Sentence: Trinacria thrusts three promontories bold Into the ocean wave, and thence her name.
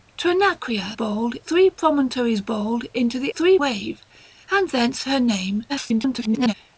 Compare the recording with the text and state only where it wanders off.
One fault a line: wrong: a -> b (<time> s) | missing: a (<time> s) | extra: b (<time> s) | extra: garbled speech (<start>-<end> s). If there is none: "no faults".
wrong: thrusts -> bold (0.9 s)
wrong: ocean -> three (3.3 s)
extra: garbled speech (5.7-6.5 s)